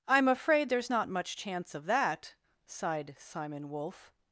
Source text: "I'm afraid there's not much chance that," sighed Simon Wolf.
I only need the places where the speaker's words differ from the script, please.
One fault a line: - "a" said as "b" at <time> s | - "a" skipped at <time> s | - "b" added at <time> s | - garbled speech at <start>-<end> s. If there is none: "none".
- "of" added at 1.7 s